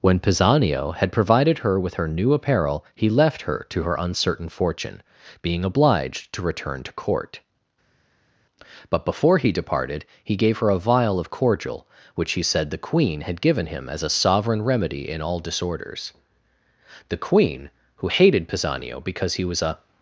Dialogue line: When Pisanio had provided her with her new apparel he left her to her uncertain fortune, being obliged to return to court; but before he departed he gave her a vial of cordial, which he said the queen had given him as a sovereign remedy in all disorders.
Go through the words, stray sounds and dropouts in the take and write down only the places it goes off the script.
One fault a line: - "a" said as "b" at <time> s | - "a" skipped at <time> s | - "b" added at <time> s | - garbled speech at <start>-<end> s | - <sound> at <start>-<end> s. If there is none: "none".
- "The queen who hated Pisanio because he was a" added at 17.1 s